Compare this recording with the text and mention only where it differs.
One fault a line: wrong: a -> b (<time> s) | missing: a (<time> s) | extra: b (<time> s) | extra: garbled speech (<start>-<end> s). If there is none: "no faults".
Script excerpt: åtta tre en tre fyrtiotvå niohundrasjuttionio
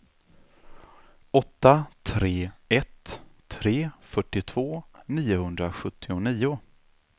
wrong: en -> ett (2.7 s)